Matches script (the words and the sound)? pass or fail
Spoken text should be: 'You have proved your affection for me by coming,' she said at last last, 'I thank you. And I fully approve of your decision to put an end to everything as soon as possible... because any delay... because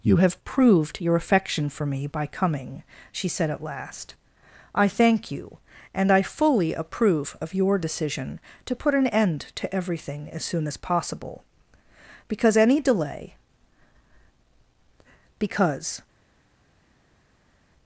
fail